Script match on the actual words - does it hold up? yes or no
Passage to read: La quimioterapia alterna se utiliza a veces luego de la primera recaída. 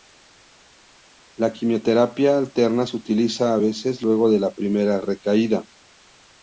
yes